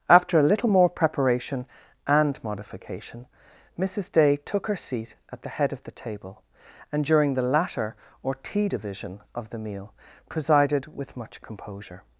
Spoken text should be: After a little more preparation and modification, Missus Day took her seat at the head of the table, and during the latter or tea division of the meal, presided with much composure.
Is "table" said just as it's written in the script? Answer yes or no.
yes